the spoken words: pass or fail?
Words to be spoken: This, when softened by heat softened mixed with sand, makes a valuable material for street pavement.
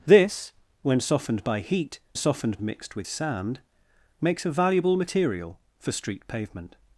pass